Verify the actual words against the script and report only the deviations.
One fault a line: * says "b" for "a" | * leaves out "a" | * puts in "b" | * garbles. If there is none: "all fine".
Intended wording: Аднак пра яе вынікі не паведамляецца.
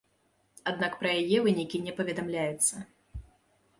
all fine